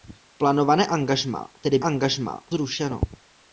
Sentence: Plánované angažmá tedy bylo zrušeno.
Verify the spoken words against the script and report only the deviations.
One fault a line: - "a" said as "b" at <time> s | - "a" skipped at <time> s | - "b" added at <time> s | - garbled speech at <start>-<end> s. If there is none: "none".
- "bylo" said as "angažmá" at 1.8 s